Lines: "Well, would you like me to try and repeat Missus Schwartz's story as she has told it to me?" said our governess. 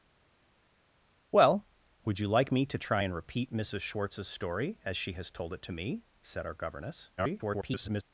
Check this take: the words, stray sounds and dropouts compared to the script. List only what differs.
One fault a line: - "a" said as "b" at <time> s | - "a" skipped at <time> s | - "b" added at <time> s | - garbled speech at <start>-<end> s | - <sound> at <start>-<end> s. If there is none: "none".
- garbled speech at 7.2-8.0 s